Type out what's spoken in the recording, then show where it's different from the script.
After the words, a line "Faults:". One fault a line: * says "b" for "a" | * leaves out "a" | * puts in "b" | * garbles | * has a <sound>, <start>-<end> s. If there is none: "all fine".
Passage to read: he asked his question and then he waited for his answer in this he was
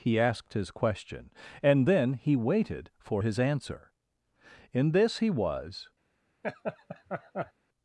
he asked his question and then he waited for his answer in this he was
Faults:
* has a laugh, 6.4-7.5 s